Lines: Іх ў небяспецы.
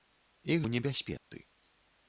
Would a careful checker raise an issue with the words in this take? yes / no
no